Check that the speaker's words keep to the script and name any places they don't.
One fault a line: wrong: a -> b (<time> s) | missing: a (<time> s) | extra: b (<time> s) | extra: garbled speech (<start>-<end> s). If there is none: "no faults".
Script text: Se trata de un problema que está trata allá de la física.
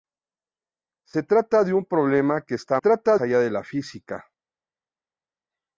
no faults